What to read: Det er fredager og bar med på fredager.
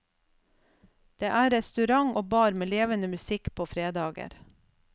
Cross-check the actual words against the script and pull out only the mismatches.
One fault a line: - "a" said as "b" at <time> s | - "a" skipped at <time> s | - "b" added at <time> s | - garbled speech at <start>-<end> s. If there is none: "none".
- "fredager" said as "restaurant" at 1.5 s
- "levende musikk" added at 2.7 s